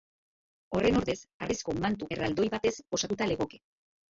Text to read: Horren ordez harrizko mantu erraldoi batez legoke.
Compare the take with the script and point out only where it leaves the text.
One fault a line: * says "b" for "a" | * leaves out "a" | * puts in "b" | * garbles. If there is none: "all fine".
* puts in "osatuta"